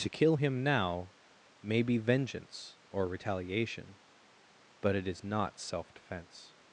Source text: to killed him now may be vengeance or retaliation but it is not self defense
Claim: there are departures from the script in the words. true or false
true